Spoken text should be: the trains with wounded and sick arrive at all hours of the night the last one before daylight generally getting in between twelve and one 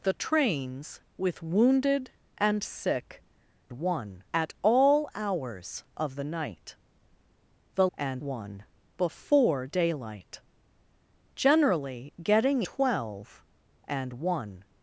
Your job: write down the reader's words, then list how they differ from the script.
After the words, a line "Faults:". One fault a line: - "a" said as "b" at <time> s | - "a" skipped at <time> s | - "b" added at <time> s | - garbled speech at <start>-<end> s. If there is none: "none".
the trains with wounded and sick one at all hours of the night the and one before daylight generally getting twelve and one
Faults:
- "arrive" said as "one" at 3.7 s
- "last" said as "and" at 7.9 s
- "in between" skipped at 12.6 s